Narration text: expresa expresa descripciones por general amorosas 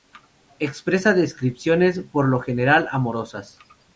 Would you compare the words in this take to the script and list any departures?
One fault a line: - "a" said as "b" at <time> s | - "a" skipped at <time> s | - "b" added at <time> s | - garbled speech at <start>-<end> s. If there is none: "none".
- "expresa" skipped at 1.1 s
- "lo" added at 2.3 s